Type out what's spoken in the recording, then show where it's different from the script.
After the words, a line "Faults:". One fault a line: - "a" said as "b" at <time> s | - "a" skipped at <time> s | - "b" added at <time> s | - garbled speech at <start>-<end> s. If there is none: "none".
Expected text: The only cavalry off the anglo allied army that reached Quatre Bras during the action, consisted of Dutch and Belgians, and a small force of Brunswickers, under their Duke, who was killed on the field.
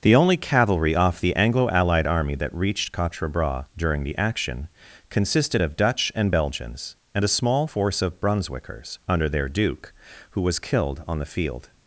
The only cavalry off the anglo allied army that reached Quatre Bras during the action, consisted of Dutch and Belgians, and a small force of Brunswickers, under their Duke, who was killed on the field.
Faults:
none